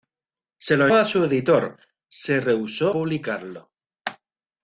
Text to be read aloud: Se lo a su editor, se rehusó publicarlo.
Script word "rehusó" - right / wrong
right